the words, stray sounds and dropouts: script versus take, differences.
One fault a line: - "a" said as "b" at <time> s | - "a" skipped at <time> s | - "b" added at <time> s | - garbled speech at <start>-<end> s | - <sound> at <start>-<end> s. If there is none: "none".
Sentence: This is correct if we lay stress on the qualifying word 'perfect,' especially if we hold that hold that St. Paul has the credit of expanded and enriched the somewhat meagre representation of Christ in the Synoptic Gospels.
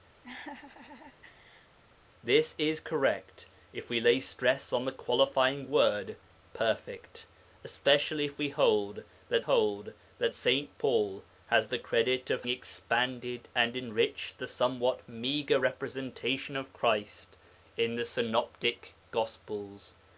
- laugh at 0.2-1.8 s